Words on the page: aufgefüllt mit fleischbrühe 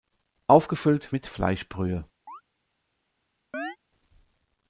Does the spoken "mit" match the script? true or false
true